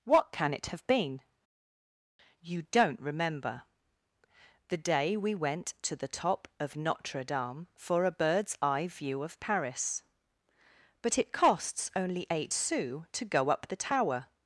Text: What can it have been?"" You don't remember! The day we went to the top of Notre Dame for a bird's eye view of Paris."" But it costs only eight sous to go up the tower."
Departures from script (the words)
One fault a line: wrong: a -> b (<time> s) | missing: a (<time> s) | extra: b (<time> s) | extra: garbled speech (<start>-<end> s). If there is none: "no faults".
no faults